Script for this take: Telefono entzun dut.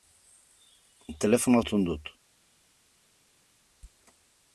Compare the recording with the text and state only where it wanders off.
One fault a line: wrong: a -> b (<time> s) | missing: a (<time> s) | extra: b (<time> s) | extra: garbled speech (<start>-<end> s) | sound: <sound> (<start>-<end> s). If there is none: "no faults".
no faults